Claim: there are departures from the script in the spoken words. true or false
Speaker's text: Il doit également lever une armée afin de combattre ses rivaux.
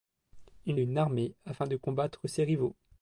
true